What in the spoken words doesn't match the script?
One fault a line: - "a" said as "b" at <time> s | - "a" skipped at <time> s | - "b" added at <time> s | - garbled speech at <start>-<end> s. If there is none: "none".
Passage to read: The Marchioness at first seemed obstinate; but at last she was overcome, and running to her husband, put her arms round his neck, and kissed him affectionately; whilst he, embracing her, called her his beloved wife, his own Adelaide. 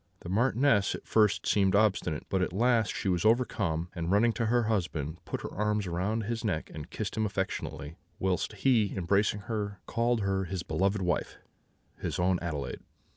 none